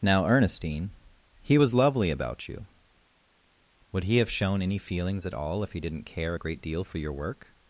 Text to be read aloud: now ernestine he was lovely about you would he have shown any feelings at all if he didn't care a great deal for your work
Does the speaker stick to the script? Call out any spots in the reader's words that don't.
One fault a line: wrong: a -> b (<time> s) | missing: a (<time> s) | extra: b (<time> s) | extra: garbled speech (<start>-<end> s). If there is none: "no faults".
no faults